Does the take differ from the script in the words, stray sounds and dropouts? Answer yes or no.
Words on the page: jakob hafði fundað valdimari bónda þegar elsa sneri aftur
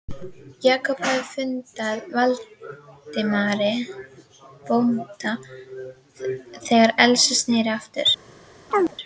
yes